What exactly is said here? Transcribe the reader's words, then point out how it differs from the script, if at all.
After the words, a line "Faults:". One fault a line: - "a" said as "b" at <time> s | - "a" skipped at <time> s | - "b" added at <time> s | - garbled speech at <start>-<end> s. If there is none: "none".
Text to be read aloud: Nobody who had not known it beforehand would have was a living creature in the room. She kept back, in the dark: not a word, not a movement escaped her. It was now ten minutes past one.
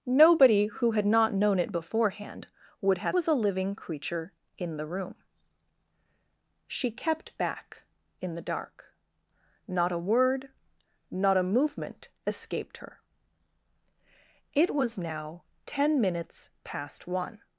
Nobody who had not known it beforehand would have was a living creature in the room. She kept back, in the dark: not a word, not a movement escaped her. It was now ten minutes past one.
Faults:
none